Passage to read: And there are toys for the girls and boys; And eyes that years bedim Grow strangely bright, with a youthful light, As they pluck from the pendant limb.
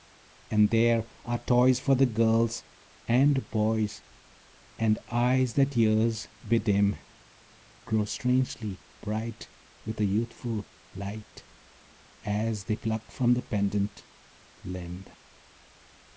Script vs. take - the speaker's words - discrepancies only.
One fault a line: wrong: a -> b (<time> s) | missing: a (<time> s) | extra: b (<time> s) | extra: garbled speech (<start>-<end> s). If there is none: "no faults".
no faults